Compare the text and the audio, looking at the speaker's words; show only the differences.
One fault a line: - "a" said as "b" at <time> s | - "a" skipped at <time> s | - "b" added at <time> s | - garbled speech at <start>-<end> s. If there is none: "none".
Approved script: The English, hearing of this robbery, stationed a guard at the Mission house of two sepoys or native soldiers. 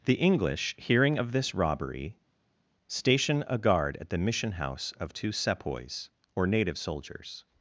- "stationed" said as "station" at 2.9 s